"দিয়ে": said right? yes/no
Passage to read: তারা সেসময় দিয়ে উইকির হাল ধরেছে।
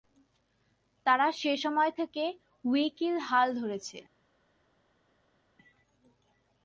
no